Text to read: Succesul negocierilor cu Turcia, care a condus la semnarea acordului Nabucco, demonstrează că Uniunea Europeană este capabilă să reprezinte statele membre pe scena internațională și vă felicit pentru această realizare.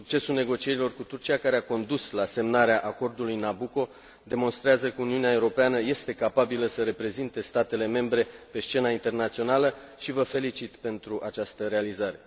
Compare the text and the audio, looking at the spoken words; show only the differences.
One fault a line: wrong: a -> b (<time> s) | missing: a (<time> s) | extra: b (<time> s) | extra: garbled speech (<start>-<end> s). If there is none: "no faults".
no faults